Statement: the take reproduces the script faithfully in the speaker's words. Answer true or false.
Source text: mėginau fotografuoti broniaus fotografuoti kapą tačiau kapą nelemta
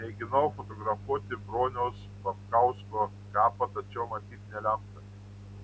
false